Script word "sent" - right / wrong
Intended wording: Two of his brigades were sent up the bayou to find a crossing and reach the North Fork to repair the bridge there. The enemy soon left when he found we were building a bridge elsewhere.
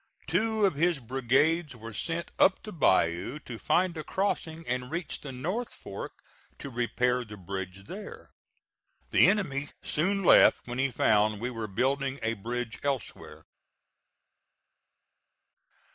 right